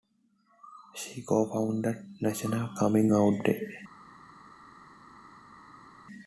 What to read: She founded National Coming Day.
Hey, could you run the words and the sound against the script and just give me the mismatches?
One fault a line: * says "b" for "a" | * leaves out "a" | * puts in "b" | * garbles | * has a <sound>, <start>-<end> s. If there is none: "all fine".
* puts in "co"
* puts in "Out"